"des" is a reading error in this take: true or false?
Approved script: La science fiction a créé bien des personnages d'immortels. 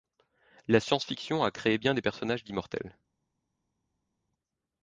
false